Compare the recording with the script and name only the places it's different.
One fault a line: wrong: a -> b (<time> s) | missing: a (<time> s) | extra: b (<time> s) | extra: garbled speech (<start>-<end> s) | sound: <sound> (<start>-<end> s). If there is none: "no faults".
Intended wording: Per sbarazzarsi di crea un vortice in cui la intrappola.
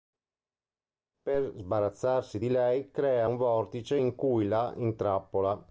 extra: lei (2.5 s)